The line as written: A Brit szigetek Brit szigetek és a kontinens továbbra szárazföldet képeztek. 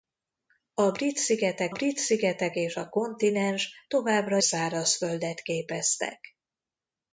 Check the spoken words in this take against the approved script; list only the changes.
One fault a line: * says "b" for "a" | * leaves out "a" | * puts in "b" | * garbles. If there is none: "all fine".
all fine